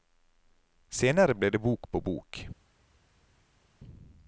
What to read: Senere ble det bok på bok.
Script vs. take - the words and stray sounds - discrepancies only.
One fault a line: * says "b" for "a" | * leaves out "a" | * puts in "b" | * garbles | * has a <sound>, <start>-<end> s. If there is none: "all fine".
all fine